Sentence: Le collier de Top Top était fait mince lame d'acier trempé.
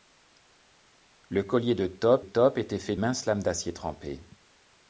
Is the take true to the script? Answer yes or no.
yes